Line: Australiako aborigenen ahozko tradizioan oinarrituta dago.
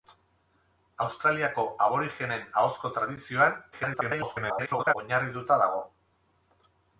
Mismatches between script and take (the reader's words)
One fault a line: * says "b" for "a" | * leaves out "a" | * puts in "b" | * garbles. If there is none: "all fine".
* garbles